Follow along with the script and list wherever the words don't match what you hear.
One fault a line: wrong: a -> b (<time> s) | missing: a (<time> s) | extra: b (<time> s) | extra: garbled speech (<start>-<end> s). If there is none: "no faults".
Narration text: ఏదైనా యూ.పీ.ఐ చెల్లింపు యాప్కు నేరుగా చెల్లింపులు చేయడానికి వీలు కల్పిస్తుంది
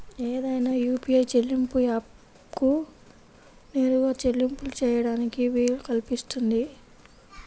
no faults